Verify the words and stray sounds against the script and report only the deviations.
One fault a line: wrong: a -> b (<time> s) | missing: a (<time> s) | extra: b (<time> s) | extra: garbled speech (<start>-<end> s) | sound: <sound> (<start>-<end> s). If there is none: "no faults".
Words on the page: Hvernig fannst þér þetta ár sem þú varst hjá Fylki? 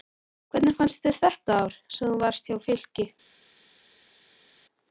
no faults